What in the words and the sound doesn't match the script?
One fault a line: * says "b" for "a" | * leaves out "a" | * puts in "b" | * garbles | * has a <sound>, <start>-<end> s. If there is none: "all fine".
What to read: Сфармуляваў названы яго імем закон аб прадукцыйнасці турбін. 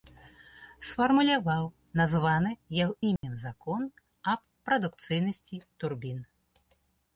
* has a dropout, 3.2-3.2 s